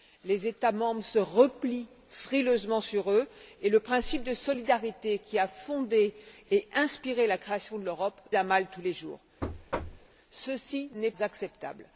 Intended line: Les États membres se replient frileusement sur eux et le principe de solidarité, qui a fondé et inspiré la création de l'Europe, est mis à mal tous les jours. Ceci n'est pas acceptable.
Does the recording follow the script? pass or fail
fail